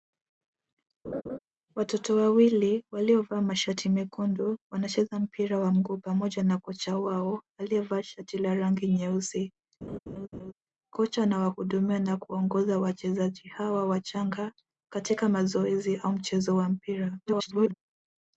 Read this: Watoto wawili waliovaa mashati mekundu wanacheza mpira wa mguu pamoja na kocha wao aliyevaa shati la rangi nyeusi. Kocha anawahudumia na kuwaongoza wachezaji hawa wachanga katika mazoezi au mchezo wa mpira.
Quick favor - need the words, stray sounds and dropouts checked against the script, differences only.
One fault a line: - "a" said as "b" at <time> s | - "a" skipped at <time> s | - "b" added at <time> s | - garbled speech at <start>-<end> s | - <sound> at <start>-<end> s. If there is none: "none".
- laugh at 1.0-1.4 s
- laugh at 9.8-10.5 s
- garbled speech at 17.3-17.7 s